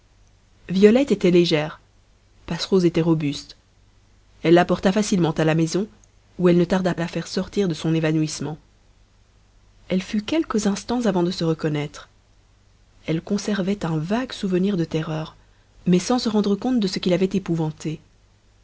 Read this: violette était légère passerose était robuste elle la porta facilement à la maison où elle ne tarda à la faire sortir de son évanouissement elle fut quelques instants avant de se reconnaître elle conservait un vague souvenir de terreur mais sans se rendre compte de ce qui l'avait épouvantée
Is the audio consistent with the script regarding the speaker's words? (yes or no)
yes